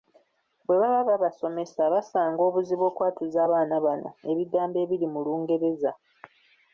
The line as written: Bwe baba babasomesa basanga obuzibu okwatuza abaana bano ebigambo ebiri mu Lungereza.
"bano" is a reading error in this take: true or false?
false